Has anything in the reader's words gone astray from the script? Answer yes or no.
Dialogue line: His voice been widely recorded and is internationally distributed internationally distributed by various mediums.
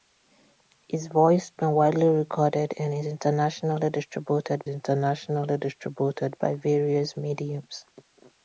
no